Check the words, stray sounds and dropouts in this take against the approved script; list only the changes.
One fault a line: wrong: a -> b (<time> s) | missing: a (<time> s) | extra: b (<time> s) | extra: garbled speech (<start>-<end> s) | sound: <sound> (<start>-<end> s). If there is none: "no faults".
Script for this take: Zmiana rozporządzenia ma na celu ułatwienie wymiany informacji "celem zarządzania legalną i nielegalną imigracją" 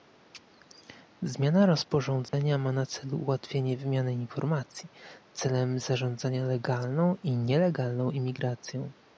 sound: dropout (2.3-2.3 s)